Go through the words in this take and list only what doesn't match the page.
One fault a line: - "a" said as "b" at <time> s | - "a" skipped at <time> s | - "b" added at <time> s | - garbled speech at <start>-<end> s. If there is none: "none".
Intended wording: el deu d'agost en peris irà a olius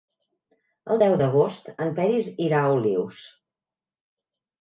none